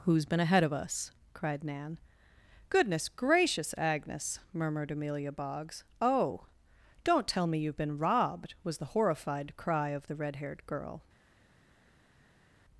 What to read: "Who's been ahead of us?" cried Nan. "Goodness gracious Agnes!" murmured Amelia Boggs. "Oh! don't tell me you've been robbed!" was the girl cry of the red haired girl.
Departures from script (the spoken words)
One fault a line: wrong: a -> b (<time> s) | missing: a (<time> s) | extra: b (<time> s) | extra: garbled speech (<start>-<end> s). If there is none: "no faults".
wrong: girl -> horrified (8.8 s)